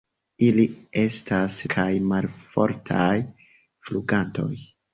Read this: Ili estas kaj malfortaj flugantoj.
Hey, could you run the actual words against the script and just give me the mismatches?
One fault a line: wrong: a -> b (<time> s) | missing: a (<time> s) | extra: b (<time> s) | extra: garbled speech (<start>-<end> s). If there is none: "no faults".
no faults